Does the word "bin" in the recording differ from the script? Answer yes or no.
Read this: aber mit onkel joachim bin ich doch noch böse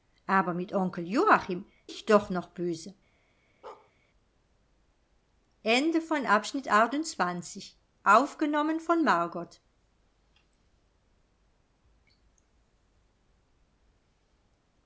yes